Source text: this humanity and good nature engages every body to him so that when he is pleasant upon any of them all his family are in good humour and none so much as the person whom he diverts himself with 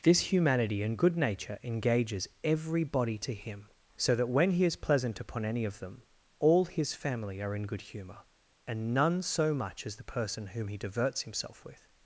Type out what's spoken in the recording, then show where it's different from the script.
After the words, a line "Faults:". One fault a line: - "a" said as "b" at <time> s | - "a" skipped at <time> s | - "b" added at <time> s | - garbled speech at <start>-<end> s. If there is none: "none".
this humanity and good nature engages every body to him so that when he is pleasant upon any of them all his family are in good humour and none so much as the person whom he diverts himself with
Faults:
none